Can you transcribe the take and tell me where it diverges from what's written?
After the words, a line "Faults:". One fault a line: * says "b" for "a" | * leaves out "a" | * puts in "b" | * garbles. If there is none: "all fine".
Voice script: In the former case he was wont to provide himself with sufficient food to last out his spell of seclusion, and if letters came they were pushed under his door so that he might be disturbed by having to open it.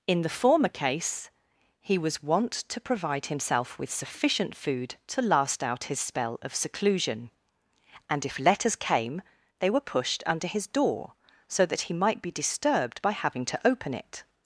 In the former case he was wont to provide himself with sufficient food to last out his spell of seclusion, and if letters came they were pushed under his door so that he might be disturbed by having to open it.
Faults:
all fine